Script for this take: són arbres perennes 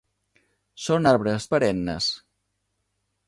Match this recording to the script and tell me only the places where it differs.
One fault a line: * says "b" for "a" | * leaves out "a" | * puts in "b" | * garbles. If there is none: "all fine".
all fine